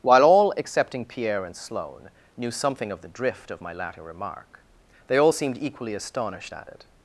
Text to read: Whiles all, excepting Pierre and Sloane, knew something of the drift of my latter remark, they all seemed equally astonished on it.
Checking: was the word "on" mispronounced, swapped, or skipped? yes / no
yes